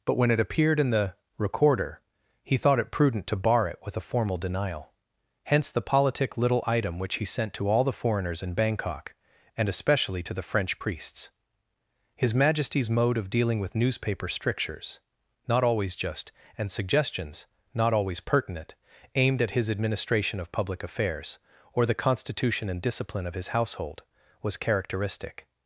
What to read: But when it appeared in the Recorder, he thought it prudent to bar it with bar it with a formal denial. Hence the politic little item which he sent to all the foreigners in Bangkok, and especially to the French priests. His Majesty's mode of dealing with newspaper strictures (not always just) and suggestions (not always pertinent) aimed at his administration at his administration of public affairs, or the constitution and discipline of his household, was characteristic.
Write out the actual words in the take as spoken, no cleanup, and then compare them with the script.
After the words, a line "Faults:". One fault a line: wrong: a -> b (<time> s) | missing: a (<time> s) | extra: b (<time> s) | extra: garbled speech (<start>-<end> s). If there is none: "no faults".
But when it appeared in the Recorder, he thought it prudent to bar it with a formal denial. Hence the politic little item which he sent to all the foreigners in Bangkok, and especially to the French priests. His Majesty's mode of dealing with newspaper strictures (not always just) and suggestions (not always pertinent) aimed at his administration of public affairs, or the constitution and discipline of his household, was characteristic.
Faults:
missing: bar it with (4.0 s)
missing: at his administration (20.4 s)